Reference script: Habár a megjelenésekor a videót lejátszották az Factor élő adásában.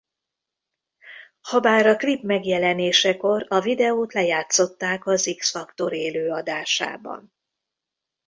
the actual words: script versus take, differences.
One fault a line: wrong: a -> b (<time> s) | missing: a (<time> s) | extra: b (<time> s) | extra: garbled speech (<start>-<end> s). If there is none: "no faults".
extra: klip (1.9 s)
extra: X (5.4 s)